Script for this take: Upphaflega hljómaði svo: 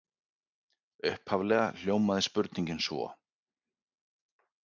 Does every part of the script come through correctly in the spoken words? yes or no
no